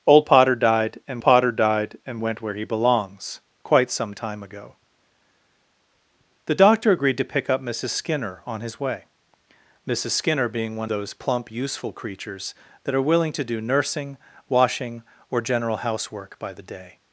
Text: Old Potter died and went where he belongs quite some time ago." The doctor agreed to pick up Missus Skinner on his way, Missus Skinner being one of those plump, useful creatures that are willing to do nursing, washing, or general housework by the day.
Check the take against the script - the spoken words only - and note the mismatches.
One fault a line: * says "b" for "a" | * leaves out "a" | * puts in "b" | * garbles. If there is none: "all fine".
* puts in "Potter died and"
* leaves out "of"